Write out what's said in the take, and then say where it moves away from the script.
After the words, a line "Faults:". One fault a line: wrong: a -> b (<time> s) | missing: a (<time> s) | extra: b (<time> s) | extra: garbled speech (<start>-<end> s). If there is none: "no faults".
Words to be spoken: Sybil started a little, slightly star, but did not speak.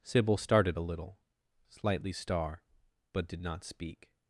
Sybil started a little, slightly star, but did not speak.
Faults:
no faults